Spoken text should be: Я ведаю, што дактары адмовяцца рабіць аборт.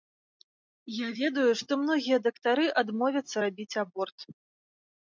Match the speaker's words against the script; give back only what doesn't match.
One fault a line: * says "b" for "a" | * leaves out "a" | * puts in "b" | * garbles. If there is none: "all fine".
* puts in "многія"